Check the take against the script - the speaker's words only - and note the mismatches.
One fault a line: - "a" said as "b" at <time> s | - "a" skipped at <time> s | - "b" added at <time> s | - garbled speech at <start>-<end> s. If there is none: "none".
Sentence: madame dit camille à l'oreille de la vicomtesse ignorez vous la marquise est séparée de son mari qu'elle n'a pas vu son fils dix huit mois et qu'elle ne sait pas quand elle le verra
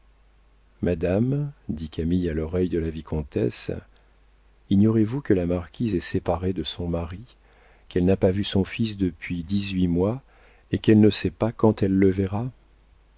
- "que" added at 5.2 s
- "depuis" added at 9.0 s